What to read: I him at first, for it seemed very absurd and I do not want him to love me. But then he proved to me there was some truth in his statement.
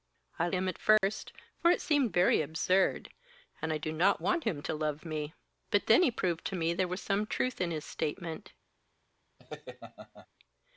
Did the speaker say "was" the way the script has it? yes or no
yes